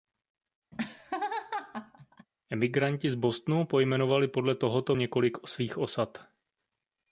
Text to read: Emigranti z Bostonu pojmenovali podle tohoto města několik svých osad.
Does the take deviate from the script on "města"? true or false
true